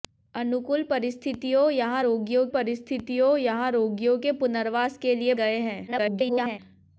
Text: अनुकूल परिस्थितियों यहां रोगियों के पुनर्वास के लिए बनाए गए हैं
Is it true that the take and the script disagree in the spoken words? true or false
true